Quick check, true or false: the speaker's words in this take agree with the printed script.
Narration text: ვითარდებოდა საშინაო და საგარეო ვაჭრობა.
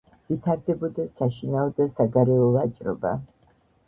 true